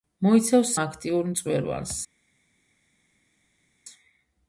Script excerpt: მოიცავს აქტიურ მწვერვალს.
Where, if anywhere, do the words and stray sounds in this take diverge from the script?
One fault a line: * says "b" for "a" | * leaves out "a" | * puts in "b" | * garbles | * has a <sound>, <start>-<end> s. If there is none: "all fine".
all fine